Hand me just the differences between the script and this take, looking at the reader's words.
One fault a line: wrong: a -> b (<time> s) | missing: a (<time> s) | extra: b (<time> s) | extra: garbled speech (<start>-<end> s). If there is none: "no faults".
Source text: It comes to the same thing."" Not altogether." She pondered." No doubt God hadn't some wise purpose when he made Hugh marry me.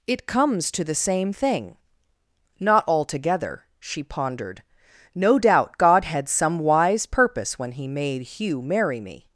wrong: hadn't -> had (6.0 s)